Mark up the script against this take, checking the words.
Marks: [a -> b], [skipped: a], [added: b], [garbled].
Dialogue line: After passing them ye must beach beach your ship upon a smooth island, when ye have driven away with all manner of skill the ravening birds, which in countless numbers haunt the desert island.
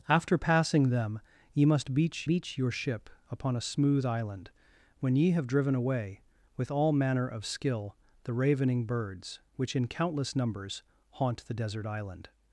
After passing them ye must beach beach your ship upon a smooth island, when ye have driven away with all manner of skill the ravening birds, which in countless numbers haunt the desert island.